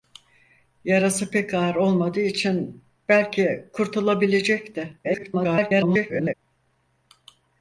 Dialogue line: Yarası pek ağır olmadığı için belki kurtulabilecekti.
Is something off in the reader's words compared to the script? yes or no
yes